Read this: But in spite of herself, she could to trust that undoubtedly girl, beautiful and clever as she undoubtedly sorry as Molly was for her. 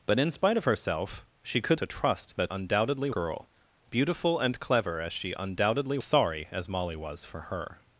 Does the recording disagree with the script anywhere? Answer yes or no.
no